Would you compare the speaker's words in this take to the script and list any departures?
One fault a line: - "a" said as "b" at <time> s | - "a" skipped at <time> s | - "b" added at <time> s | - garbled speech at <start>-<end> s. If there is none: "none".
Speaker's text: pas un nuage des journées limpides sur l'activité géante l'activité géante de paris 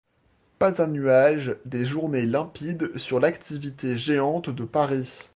- "l'activité géante" skipped at 4.5 s